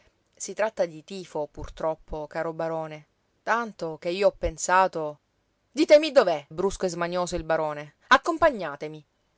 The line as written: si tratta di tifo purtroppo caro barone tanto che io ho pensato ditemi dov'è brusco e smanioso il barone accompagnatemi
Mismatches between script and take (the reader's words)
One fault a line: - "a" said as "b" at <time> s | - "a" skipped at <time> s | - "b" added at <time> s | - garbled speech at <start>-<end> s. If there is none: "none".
none